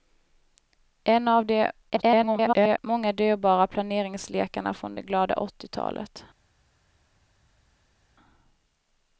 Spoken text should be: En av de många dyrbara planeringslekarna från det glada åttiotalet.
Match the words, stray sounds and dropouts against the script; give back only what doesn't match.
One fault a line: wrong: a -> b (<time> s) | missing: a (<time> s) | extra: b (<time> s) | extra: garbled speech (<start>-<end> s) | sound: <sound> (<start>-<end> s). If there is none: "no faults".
extra: garbled speech (1.9-2.8 s)